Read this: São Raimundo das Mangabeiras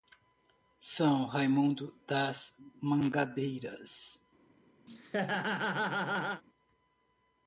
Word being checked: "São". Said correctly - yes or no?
yes